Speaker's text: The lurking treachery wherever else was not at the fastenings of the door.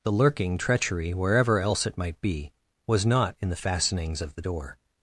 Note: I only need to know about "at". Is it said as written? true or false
false